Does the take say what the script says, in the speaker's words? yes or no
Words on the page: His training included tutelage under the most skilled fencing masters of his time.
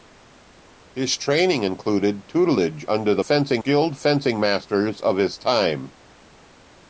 no